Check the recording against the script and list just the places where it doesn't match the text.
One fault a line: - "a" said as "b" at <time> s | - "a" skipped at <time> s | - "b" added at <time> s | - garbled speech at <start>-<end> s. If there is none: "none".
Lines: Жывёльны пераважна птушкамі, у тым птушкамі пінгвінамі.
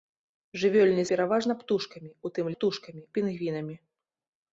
none